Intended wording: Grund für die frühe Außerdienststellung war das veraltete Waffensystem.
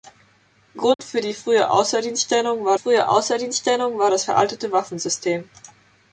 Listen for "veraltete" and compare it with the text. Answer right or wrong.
right